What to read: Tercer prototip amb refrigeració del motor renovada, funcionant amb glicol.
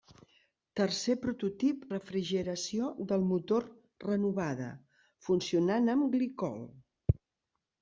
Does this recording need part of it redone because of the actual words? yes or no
yes